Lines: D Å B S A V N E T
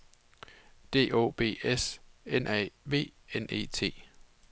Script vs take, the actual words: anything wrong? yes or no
yes